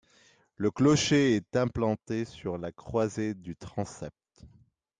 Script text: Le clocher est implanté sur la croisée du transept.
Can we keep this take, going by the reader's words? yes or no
yes